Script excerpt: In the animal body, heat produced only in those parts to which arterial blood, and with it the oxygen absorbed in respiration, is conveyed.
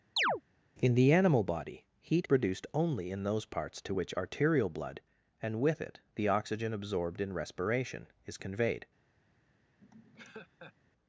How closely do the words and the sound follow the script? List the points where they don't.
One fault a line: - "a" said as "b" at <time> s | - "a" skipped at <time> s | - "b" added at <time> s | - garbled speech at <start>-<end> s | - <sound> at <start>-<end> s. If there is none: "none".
- chirp at 0.2-0.4 s
- laugh at 9.8-10.7 s